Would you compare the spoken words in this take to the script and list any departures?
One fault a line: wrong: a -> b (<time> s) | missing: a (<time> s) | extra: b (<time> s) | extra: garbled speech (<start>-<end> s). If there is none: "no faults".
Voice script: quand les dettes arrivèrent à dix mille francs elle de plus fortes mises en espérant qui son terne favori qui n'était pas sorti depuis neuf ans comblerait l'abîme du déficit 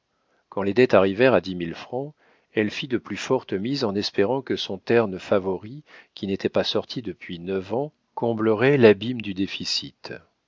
extra: fit (2.7 s)
wrong: qui -> que (4.4 s)